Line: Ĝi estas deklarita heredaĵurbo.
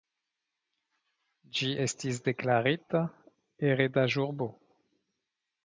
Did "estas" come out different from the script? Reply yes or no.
yes